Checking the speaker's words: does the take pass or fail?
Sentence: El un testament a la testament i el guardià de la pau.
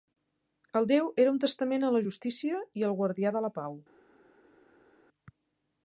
fail